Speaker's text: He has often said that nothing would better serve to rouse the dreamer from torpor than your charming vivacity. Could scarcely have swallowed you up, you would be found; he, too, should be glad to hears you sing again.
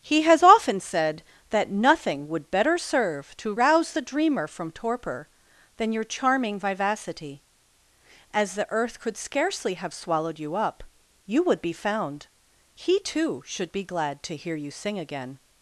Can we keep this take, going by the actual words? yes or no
no